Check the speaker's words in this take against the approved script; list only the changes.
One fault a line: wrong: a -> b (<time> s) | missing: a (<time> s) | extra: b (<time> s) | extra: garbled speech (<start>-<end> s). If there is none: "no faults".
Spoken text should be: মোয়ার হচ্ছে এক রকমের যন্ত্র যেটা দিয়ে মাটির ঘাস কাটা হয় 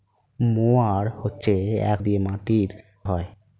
missing: রকমের যন্ত্র যেটা (2.0 s)
missing: ঘাস কাটা (2.7 s)